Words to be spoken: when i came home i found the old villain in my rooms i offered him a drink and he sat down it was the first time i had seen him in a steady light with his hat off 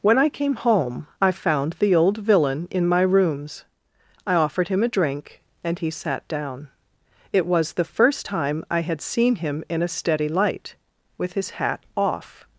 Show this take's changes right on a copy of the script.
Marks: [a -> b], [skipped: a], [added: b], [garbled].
when i came home i found the old villain in my rooms i offered him a drink and he sat down it was the first time i had seen him in a steady light with his hat off